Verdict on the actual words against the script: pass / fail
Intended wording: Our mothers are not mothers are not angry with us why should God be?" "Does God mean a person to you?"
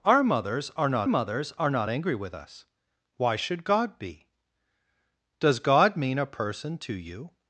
pass